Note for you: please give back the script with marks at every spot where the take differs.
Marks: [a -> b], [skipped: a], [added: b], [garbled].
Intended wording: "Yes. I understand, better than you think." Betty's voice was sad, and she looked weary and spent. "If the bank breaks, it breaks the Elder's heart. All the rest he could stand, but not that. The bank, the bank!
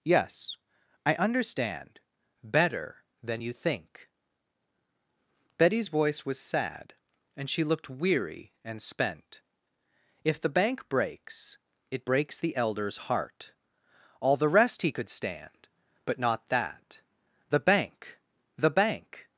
"Yes. I understand, better than you think." Betty's voice was sad, and she looked weary and spent. "If the bank breaks, it breaks the Elder's heart. All the rest he could stand, but not that. The bank, the bank!